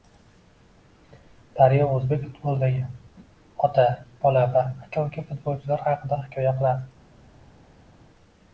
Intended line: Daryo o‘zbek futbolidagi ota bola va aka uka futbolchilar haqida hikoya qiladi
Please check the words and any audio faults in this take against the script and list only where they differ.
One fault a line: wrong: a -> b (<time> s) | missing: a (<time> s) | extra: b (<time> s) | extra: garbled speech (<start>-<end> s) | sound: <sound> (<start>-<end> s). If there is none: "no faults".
no faults